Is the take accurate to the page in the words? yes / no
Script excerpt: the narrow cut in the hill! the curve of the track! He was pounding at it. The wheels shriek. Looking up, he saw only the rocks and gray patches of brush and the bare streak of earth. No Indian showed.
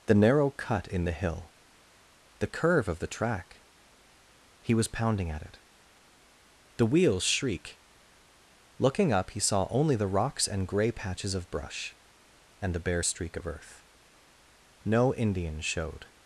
yes